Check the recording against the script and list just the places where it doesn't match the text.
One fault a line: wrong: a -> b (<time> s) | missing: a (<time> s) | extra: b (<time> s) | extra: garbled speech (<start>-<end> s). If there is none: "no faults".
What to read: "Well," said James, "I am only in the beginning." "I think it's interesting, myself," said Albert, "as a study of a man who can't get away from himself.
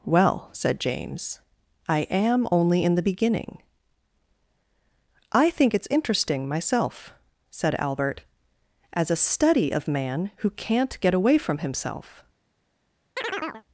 missing: a (9.9 s)